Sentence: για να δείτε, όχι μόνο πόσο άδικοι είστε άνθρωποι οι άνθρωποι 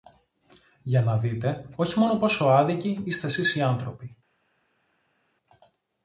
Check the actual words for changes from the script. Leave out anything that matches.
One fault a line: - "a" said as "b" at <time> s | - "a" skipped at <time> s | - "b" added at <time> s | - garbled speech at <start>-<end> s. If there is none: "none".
- "άνθρωποι" said as "σεις" at 3.3 s